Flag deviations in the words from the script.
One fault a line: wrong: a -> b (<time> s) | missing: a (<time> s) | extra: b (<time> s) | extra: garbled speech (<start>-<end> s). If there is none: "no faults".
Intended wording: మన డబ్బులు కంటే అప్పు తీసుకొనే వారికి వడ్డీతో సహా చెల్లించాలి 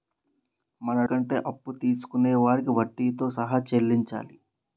missing: డబ్బులు (1.0 s)